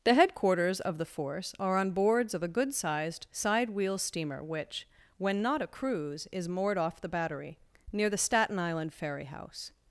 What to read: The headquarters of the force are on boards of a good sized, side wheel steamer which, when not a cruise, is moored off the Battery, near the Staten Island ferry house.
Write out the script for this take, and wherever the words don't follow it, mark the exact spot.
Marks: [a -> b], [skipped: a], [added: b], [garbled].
The headquarters of the force are on boards of a good sized, side wheel steamer which, when not a cruise, is moored off the Battery, near the Staten Island ferry house.